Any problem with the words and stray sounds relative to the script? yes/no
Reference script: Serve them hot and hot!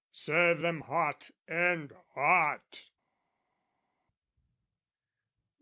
no